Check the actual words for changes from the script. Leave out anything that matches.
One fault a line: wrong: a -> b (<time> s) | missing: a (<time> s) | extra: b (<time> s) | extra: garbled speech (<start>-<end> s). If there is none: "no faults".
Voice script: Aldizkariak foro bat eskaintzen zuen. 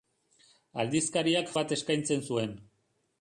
missing: foro (1.5 s)